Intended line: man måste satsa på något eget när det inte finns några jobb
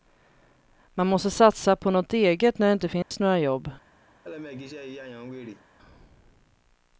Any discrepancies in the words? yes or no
no